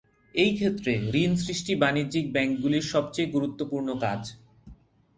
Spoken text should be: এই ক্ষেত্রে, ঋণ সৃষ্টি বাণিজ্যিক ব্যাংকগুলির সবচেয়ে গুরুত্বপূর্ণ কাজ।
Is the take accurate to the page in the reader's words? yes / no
yes